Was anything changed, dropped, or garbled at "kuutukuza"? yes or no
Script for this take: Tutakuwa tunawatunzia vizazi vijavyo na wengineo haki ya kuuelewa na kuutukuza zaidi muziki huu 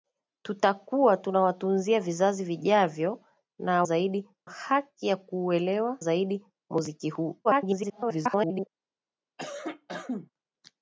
yes